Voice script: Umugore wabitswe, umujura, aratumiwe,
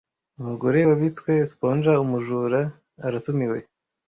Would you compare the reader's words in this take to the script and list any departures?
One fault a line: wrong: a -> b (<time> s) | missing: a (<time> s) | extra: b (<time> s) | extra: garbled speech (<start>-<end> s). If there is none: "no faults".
extra: sponger (1.5 s)